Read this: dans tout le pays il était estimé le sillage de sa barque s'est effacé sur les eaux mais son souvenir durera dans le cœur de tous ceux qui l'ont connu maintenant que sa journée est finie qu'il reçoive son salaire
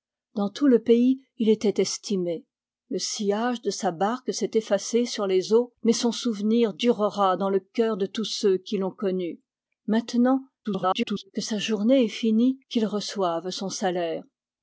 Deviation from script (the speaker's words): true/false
true